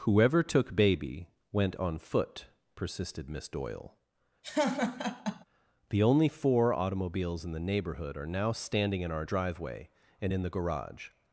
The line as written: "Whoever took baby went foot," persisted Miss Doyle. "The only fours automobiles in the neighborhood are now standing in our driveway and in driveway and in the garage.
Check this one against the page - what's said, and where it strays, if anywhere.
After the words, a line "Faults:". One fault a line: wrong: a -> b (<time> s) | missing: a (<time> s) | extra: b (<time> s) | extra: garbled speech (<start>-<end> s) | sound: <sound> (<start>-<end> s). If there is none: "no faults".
"Whoever took baby went on foot," persisted Miss Doyle. "The only four automobiles in the neighborhood are now standing in our driveway and in the garage.
Faults:
extra: on (1.8 s)
sound: laugh (4.4-5.5 s)
wrong: fours -> four (6.3 s)
missing: driveway and in (10.4 s)